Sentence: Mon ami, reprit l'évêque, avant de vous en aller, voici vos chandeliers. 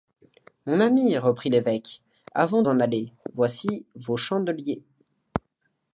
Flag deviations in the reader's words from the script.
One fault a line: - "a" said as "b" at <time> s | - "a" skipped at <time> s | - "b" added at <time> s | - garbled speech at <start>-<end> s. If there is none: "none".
- "de vous" skipped at 2.6 s